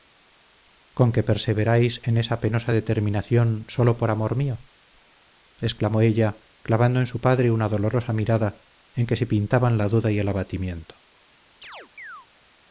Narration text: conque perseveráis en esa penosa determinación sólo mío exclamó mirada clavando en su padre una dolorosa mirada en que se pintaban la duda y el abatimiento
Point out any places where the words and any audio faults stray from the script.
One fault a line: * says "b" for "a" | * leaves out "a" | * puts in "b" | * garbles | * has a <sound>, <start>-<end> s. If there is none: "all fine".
* puts in "por amor"
* says "ella" for "mirada"
* has a chirp, 11.6-12.3 s